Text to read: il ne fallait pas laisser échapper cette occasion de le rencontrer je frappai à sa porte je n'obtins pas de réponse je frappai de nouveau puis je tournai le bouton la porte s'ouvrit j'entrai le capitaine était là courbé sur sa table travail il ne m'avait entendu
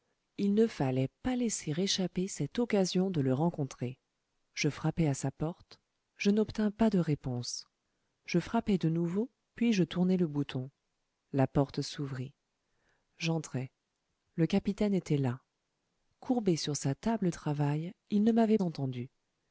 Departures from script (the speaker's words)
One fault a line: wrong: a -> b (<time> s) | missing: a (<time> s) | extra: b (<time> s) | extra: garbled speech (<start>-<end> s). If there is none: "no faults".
no faults